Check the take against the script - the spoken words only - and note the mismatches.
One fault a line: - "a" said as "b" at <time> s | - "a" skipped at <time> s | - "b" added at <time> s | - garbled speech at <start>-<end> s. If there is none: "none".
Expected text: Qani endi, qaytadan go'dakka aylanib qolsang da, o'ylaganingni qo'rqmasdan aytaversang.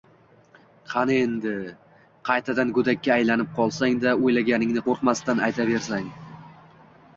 none